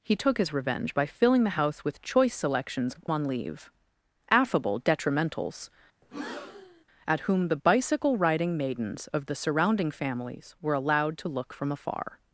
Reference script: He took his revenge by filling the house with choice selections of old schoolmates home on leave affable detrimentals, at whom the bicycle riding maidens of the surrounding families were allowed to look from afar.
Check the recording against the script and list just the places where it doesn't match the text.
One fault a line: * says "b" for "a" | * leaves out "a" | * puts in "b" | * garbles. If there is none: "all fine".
* leaves out "old schoolmates home"